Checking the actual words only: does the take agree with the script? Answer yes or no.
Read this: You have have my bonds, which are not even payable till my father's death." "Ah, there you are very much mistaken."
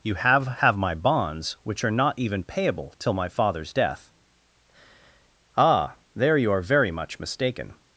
yes